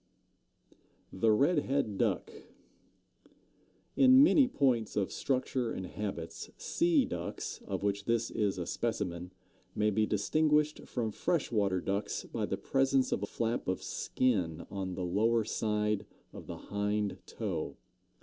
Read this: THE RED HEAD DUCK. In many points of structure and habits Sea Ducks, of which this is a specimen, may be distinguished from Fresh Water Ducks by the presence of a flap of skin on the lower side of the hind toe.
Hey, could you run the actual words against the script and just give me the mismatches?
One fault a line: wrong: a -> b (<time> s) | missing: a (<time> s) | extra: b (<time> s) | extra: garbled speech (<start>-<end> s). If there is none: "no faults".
no faults